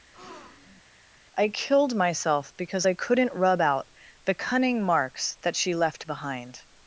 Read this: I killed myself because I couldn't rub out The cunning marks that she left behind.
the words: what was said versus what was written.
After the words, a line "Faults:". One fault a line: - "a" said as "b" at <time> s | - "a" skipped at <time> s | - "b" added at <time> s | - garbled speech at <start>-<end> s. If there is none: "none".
I killed myself because I couldn't rub out The cunning marks that she left behind.
Faults:
none